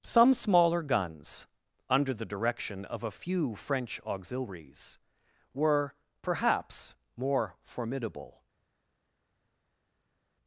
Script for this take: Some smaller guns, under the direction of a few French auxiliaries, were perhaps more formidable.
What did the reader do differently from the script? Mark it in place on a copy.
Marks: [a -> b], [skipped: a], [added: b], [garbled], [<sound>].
Some smaller guns, under the direction of a few French auxiliaries, were perhaps more formidable.